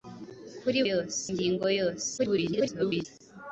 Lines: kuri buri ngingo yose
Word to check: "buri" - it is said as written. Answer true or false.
false